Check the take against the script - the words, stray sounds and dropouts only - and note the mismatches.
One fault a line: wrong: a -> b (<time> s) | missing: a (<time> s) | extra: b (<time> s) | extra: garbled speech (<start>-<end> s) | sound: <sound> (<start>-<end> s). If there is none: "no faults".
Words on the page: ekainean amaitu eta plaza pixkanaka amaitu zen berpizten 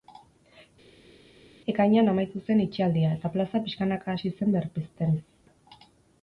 extra: zen itxialdia (2.5 s)
wrong: amaitu -> hasi (4.2 s)